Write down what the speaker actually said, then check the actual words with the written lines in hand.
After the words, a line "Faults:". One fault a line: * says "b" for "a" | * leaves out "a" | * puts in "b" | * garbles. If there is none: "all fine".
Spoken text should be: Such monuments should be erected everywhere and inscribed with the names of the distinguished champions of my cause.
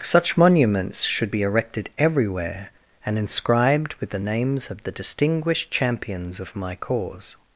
Such monuments should be erected everywhere and inscribed with the names of the distinguished champions of my cause.
Faults:
all fine